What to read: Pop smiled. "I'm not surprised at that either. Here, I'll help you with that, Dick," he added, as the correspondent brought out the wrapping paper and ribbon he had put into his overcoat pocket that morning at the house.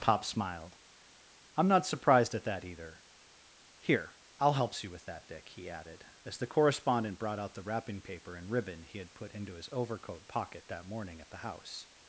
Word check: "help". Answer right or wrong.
wrong